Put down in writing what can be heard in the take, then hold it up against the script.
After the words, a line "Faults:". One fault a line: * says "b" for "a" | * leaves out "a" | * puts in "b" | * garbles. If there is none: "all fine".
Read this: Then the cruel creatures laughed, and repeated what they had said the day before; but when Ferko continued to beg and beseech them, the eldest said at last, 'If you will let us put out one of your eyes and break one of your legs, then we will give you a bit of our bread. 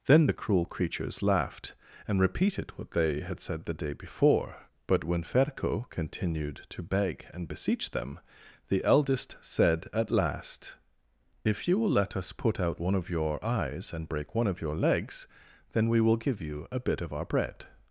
Then the cruel creatures laughed, and repeated what they had said the day before; but when Ferko continued to beg and beseech them, the eldest said at last, 'If you will let us put out one of your eyes and break one of your legs, then we will give you a bit of our bread.
Faults:
all fine